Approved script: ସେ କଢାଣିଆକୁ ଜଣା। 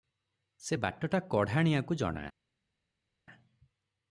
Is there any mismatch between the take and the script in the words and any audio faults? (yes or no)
yes